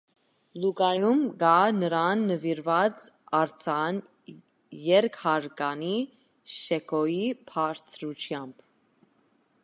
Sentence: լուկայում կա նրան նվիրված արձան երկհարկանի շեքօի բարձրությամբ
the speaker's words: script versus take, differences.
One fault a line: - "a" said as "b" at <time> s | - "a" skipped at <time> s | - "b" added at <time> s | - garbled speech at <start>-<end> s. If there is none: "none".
none